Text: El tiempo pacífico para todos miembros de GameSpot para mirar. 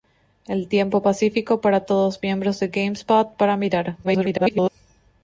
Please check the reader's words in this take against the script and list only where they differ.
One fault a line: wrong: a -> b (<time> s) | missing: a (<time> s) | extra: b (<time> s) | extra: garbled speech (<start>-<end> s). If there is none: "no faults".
extra: garbled speech (4.0-4.7 s)